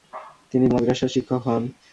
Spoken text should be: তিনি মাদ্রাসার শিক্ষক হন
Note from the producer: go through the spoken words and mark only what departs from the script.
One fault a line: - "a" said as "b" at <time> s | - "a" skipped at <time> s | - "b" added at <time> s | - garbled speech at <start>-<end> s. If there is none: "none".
none